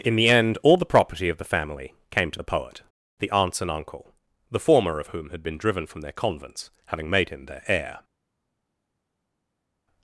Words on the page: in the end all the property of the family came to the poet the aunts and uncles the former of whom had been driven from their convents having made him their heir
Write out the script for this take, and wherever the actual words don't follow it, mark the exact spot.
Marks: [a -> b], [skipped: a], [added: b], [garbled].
in the end all the property of the family came to the poet the aunts and [uncles -> uncle] the former of whom had been driven from their convents having made him their heir